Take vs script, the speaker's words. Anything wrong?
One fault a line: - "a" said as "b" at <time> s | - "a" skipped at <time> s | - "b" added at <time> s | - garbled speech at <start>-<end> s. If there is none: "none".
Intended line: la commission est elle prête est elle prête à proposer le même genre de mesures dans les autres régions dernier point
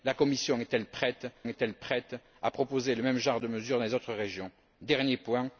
none